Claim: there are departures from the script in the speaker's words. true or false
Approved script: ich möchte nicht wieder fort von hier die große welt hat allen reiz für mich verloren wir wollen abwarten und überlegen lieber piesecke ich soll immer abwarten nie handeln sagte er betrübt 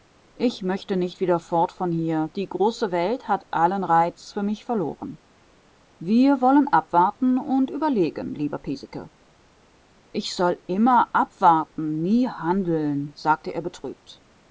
false